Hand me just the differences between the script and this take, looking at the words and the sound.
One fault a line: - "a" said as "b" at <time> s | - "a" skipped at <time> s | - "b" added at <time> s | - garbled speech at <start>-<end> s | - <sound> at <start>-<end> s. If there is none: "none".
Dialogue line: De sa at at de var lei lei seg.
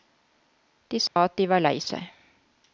- dropout at 1.1-1.2 s
- "at" skipped at 1.4 s
- "lei" skipped at 1.8 s